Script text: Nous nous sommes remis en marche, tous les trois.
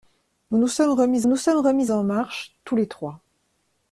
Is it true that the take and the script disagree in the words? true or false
true